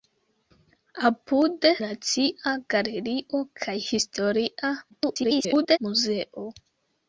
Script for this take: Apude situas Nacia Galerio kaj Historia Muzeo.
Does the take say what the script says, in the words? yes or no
no